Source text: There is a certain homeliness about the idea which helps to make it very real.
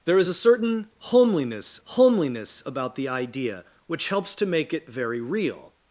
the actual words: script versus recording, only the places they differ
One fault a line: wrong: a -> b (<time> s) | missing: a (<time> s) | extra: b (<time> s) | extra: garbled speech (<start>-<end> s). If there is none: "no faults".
extra: homeliness (1.8 s)